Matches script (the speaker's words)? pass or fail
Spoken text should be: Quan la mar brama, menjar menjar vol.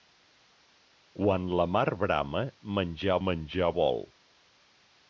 pass